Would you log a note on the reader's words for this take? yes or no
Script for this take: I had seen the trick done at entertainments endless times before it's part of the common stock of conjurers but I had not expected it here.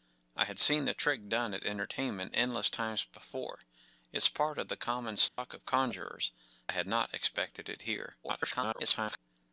yes